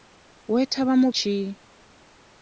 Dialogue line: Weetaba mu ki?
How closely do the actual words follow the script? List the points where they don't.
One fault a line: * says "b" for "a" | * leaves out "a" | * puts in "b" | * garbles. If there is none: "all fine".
all fine